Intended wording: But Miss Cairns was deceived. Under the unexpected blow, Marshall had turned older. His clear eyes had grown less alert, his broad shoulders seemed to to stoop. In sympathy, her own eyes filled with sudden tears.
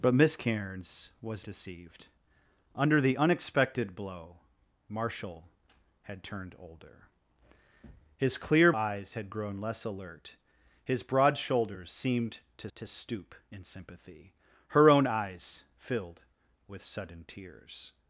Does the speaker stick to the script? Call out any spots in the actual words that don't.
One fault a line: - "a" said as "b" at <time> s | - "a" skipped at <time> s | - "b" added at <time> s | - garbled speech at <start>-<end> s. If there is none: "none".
none